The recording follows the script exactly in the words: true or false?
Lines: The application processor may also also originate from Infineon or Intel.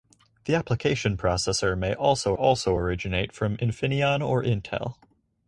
true